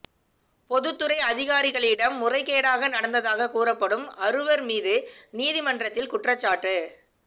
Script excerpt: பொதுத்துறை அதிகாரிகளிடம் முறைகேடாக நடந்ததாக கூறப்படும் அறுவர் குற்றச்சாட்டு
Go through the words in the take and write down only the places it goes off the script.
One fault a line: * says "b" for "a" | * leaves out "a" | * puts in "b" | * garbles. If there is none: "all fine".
* puts in "மீது நீதிமன்றத்தில்"